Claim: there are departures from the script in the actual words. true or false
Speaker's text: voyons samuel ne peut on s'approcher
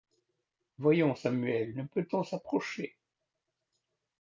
false